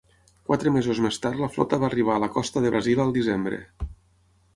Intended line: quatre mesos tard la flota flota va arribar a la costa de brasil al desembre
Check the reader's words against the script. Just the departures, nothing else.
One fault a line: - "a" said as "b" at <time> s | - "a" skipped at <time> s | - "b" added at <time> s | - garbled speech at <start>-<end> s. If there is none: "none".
- "més" added at 1.1 s
- "flota" skipped at 1.8 s